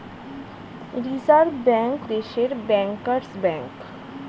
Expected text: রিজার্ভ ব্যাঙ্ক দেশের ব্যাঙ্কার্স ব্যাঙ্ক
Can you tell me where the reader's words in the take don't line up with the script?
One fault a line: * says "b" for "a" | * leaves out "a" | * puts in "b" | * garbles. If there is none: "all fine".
all fine